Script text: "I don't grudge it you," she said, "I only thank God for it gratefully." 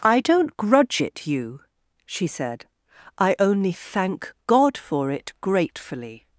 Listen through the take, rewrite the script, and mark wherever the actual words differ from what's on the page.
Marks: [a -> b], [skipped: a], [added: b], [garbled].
"I don't grudge it you," she said, "I only thank God for it gratefully."